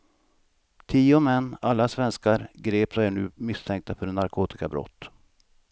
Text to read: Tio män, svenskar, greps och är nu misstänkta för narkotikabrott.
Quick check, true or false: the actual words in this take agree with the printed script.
false